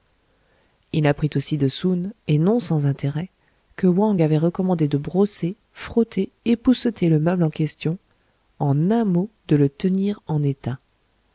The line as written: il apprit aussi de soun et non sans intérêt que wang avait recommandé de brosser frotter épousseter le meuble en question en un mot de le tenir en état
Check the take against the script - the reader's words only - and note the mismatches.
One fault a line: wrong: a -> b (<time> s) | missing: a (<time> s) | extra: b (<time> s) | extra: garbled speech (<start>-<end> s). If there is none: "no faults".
no faults